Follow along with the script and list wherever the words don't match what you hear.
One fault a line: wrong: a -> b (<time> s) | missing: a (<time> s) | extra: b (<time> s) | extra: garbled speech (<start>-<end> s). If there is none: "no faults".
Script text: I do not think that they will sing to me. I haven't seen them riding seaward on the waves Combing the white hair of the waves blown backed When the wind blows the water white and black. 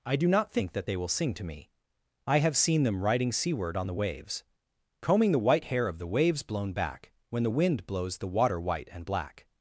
wrong: haven't -> have (2.4 s)
wrong: backed -> back (6.7 s)